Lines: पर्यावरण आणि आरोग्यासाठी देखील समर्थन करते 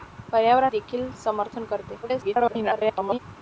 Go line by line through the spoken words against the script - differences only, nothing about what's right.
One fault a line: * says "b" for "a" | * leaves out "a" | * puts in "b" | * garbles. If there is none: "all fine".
* leaves out "आणि आरोग्यासाठी"
* garbles